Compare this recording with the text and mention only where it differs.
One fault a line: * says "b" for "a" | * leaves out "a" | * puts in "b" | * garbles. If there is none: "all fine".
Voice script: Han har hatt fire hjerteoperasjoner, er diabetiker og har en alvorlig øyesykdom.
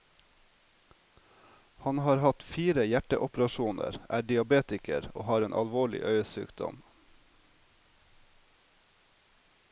all fine